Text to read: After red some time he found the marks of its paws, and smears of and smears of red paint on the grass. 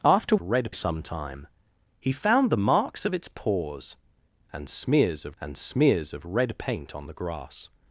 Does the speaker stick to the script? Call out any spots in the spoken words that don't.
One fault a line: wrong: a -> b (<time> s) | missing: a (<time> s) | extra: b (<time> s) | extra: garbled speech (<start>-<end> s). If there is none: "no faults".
no faults